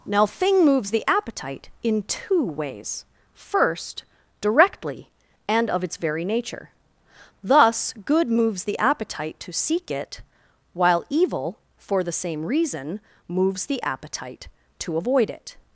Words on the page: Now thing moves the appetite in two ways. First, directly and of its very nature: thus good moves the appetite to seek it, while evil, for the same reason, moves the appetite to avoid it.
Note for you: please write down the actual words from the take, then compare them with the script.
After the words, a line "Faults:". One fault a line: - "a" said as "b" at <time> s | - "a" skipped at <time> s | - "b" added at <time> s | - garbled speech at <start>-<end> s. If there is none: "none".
Now thing moves the appetite in two ways. First, directly and of its very nature: thus good moves the appetite to seek it, while evil, for the same reason, moves the appetite to avoid it.
Faults:
none